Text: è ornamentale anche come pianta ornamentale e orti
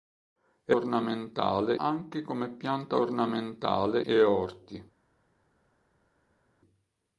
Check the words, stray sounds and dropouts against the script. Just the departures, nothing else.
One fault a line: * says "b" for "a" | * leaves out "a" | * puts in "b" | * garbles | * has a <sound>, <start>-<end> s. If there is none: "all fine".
all fine